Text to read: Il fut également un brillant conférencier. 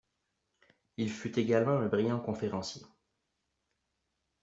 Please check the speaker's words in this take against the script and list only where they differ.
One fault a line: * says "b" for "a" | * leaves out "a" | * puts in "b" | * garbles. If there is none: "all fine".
all fine